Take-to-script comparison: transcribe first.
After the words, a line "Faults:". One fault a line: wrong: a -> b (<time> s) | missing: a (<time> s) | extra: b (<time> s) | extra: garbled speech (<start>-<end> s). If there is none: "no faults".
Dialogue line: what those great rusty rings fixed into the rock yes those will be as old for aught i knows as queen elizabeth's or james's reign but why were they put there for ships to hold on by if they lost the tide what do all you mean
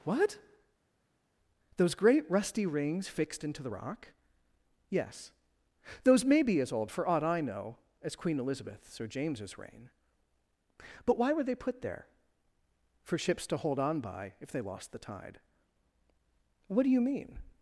what those great rusty rings fixed into the rock yes those may be as old for aught i know as queen elizabeth's or james's reign but why were they put there for ships to hold on by if they lost the tide what do you mean
Faults:
wrong: will -> may (6.2 s)
wrong: knows -> know (7.4 s)
missing: all (16.9 s)